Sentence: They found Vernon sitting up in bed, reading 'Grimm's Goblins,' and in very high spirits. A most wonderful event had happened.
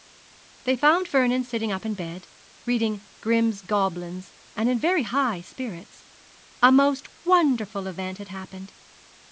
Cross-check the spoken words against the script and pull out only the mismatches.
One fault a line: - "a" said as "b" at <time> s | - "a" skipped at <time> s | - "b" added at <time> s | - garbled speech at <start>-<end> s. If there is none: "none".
none